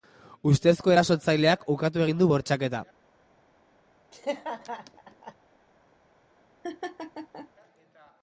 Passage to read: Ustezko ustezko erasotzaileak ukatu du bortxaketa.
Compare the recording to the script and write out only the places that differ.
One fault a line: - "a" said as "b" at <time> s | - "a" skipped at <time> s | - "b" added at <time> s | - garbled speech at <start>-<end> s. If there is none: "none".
- "ustezko" skipped at 0.9 s
- "egin" added at 2.0 s